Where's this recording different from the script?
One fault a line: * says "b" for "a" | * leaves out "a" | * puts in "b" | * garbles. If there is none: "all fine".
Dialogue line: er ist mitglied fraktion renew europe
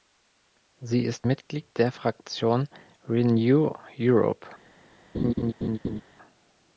* says "sie" for "er"
* puts in "der"